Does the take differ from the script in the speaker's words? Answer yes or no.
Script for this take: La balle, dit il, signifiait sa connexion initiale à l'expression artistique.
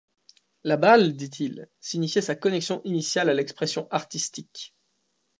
no